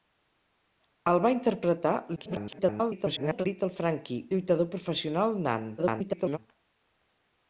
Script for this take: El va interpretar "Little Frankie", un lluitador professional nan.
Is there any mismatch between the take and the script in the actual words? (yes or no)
yes